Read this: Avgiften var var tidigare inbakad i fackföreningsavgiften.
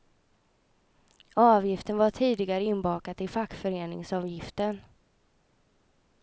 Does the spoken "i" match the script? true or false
true